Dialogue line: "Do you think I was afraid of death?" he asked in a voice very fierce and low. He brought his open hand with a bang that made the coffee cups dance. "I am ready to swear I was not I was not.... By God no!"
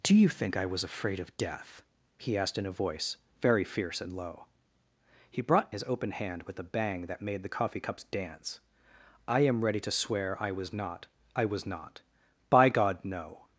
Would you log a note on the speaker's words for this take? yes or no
no